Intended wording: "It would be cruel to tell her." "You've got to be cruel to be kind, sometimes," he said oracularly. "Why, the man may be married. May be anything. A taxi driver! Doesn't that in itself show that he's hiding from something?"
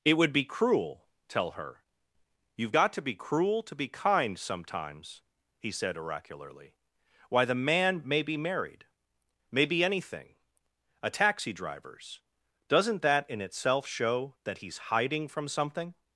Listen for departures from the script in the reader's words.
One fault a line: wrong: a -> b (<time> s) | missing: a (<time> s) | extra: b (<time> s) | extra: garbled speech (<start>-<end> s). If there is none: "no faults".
missing: to (1.1 s)
wrong: driver -> drivers (11.5 s)